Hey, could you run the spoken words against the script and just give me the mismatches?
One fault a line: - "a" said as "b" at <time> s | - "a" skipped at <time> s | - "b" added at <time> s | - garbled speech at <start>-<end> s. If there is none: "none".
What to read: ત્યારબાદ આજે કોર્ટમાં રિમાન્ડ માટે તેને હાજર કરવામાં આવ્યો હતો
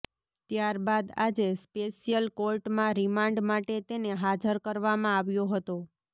- "સ્પેશિયલ" added at 1.6 s